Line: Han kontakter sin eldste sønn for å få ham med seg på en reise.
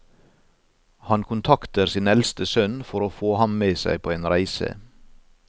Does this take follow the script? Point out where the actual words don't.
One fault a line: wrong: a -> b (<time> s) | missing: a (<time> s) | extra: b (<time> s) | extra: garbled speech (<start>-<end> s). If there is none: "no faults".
no faults